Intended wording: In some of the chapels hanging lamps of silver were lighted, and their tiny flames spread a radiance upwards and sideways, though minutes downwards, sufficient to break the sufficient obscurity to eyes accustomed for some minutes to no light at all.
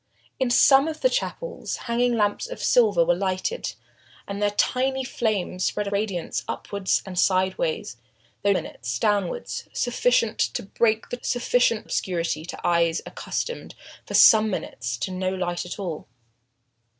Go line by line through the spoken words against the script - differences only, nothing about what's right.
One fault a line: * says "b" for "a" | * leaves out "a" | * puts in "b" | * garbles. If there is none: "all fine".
all fine